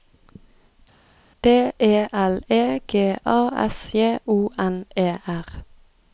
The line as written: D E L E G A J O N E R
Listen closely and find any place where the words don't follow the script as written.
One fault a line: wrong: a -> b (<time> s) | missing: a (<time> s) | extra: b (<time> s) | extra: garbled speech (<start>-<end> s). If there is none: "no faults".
extra: S (3.6 s)